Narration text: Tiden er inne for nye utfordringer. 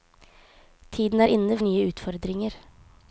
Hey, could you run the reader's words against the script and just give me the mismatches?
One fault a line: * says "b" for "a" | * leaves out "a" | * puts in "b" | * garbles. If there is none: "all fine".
* leaves out "for"